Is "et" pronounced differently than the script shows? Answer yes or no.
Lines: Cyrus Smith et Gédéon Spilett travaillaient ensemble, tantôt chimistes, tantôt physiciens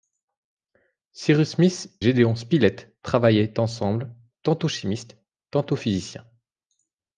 yes